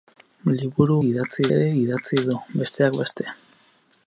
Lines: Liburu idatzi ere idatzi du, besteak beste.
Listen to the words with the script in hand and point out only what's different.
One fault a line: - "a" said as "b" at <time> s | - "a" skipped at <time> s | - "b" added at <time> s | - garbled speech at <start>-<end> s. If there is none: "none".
none